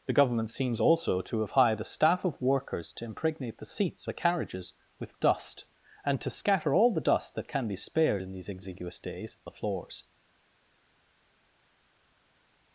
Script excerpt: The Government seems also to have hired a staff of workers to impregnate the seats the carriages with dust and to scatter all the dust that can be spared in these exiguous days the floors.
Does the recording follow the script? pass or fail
pass